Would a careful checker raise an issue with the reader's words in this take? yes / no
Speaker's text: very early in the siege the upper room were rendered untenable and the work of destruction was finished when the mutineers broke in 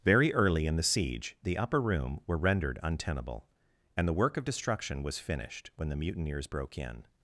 no